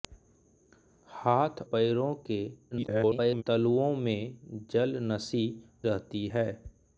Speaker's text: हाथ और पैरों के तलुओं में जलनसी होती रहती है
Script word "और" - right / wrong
wrong